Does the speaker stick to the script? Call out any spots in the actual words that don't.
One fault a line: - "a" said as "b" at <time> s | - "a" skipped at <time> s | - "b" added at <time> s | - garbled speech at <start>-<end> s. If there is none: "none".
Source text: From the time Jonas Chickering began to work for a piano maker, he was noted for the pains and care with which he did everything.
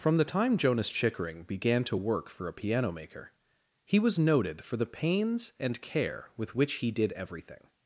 none